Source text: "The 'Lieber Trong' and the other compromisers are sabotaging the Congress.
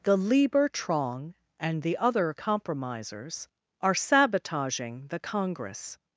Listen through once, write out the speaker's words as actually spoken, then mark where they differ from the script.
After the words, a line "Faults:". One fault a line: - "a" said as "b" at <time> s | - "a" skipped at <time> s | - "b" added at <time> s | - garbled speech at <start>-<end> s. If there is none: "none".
"The 'Lieber Trong' and the other compromisers are sabotaging the Congress.
Faults:
none